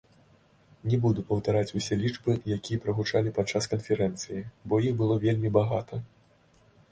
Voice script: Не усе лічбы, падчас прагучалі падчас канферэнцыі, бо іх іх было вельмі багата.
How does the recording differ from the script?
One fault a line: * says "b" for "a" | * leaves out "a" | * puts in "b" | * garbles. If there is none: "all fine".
* puts in "буду паўтараць"
* says "якія" for "падчас"
* leaves out "іх"